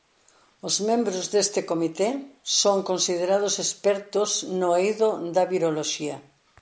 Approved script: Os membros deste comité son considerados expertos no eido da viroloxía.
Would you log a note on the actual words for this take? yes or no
no